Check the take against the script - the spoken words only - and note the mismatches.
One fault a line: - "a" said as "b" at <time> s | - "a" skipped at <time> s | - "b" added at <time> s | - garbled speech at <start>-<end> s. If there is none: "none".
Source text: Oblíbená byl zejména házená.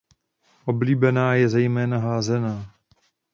- "byl" said as "je" at 1.4 s